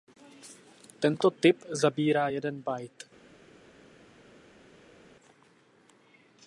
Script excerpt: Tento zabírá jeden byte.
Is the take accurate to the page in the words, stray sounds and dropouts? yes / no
no